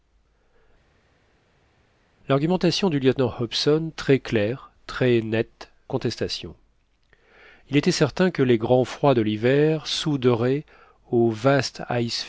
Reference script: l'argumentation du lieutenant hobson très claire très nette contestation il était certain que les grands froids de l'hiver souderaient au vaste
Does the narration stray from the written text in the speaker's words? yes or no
no